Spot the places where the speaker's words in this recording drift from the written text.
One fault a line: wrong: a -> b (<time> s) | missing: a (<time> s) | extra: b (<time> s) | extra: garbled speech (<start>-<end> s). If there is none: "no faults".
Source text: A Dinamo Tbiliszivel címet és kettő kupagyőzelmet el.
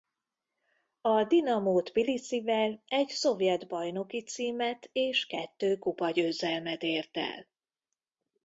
extra: egy szovjet bajnoki (2.9 s)
extra: ért (6.8 s)